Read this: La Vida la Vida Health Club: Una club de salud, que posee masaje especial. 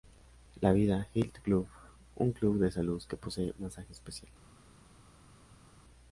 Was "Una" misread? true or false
true